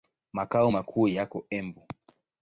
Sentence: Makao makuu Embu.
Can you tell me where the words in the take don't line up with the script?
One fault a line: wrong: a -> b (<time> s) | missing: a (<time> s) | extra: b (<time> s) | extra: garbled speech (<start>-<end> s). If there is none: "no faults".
extra: yako (1.1 s)